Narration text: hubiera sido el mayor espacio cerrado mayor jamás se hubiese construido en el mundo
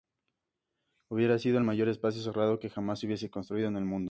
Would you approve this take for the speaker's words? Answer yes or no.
no